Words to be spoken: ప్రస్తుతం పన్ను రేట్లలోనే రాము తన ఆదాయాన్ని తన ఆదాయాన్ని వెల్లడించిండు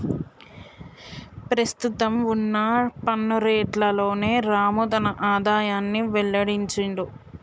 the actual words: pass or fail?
fail